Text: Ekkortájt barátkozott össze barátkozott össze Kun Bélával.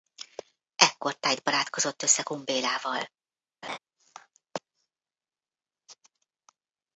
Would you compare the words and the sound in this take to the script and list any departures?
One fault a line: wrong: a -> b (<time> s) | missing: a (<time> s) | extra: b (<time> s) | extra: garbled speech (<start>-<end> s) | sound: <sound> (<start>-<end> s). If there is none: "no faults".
missing: barátkozott össze (2.2 s)
sound: laugh (3.6-3.8 s)